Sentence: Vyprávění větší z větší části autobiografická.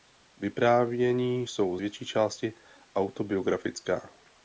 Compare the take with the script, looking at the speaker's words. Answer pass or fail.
fail